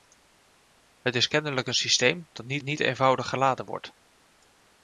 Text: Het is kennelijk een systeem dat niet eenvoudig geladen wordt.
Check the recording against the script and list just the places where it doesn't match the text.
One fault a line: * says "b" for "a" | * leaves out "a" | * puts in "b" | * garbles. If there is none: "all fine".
* puts in "niet"